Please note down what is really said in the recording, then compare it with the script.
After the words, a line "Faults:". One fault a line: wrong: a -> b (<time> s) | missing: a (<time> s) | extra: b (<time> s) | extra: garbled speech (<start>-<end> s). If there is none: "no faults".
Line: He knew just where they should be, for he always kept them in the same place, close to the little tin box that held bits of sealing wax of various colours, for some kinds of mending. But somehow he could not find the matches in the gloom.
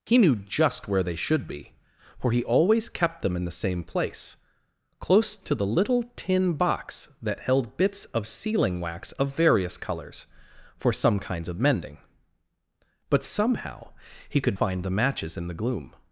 He knew just where they should be, for he always kept them in the same place, close to the little tin box that held bits of sealing wax of various colours, for some kinds of mending. But somehow he could find the matches in the gloom.
Faults:
missing: not (14.6 s)